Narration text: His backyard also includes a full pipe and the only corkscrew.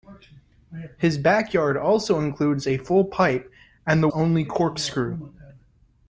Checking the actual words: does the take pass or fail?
pass